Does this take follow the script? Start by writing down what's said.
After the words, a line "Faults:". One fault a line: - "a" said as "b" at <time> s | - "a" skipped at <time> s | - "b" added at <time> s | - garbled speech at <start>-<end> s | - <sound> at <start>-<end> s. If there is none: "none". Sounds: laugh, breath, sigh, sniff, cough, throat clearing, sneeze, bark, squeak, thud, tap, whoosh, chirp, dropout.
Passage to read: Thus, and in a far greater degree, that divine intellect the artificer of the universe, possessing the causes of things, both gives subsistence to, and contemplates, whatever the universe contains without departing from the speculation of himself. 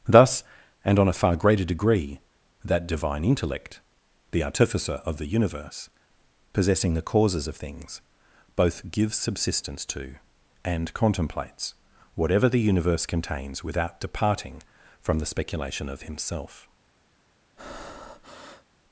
Thus, and on a far greater degree, that divine intellect the artificer of the universe, possessing the causes of things, both gives subsistence to, and contemplates, whatever the universe contains without departing from the speculation of himself.
Faults:
- "in" said as "on" at 1.0 s
- breath at 17.6-18.7 s